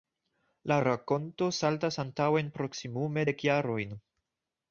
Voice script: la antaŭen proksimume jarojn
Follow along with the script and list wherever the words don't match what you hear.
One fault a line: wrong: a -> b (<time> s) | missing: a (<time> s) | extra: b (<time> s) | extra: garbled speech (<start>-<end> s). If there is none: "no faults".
extra: rakonto saltas (0.8 s)
extra: dek (3.3 s)